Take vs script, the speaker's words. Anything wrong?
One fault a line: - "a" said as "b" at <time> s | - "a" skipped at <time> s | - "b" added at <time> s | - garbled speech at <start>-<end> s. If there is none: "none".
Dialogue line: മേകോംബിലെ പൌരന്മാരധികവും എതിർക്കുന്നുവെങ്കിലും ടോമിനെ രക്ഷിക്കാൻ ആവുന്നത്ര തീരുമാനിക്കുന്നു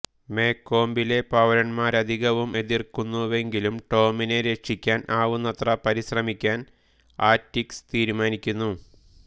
- "പരിശ്രമിക്കാൻ ആറ്റികസ്" added at 5.9 s